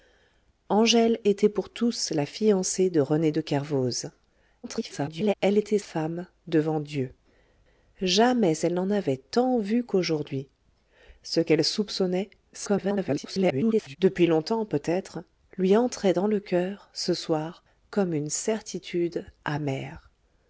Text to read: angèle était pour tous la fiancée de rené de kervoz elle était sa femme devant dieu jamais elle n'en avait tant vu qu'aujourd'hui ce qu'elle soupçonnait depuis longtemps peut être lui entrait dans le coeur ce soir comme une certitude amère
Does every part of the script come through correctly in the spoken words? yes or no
no